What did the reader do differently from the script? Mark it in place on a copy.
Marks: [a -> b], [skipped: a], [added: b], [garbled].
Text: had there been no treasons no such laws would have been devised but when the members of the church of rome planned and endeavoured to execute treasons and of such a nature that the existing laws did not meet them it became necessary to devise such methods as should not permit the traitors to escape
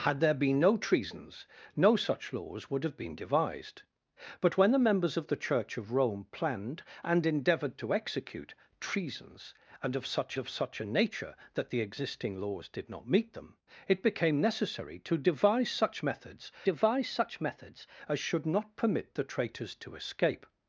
had there been no treasons no such laws would have been devised but when the members of the church of rome planned and endeavoured to execute treasons and of such [added: of such] a nature that the existing laws did not meet them it became necessary to devise such methods [added: devise such methods] as should not permit the traitors to escape